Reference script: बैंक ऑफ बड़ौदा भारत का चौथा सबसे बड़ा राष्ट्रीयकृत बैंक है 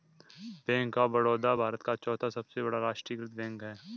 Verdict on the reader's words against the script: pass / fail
pass